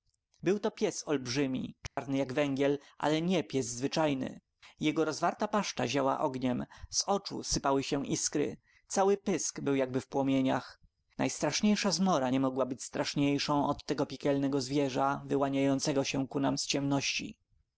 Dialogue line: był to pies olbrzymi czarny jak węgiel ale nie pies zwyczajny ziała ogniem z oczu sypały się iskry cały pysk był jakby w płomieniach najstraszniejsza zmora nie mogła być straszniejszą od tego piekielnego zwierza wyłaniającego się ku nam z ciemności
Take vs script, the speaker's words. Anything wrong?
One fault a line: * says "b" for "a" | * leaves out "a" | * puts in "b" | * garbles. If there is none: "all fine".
* puts in "jego rozwarta paszcza"